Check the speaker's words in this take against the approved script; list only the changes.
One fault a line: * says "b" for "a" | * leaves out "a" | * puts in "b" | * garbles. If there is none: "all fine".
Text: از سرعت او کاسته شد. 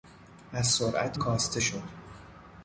* leaves out "او"